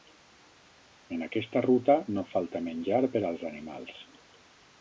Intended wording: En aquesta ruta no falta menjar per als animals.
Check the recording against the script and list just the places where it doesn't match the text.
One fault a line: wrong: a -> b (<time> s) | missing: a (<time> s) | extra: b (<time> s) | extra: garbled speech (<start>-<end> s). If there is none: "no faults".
no faults